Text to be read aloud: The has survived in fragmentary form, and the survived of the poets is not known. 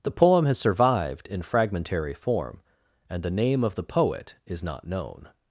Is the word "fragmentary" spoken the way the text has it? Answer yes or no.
yes